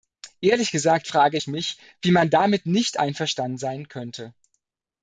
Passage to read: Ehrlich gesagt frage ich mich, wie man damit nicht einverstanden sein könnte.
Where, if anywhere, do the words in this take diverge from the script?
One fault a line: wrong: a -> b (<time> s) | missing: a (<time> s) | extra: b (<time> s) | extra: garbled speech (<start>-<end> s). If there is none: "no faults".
no faults